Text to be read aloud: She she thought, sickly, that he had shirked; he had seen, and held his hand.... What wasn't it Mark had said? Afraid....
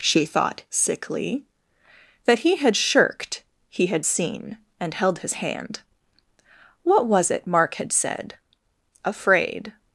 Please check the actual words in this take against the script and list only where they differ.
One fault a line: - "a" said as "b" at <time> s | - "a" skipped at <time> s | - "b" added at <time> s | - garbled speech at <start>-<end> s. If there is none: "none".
- "she" skipped at 0.2 s
- "wasn't" said as "was" at 7.1 s